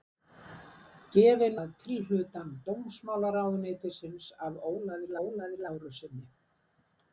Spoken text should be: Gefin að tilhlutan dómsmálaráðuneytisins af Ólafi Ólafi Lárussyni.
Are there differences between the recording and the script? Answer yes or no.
no